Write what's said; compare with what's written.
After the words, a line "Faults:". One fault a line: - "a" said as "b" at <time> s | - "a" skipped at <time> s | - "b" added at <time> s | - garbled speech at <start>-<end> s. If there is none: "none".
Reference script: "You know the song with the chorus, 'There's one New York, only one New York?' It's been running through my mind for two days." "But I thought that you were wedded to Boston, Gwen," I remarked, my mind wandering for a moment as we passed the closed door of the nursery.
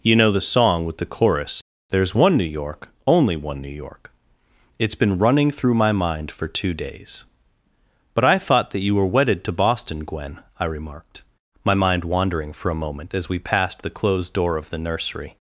"You know the song with the chorus, 'There's one New York, only one New York?' It's been running through my mind for two days." "But I thought that you were wedded to Boston, Gwen," I remarked, my mind wandering for a moment as we passed the closed door of the nursery.
Faults:
none